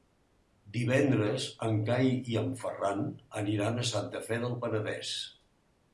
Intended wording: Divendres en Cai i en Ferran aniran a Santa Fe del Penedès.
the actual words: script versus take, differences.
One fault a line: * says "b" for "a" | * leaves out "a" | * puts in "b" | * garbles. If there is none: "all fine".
all fine